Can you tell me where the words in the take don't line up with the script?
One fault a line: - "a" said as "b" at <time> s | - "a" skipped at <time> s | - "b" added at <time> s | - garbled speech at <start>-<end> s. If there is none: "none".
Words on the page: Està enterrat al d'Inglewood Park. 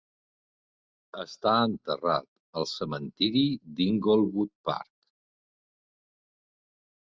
- "cementiri" added at 2.7 s